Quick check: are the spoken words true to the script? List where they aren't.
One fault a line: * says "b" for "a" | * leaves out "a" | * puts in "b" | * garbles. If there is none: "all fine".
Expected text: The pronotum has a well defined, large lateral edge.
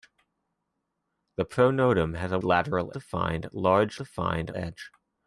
* says "lateral" for "well"
* says "defined" for "lateral"